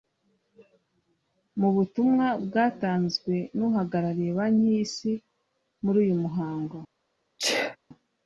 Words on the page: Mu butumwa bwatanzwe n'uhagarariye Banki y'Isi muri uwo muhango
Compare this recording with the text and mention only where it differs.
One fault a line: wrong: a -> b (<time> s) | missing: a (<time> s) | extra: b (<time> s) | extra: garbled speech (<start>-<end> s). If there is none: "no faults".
wrong: uwo -> uyu (6.0 s)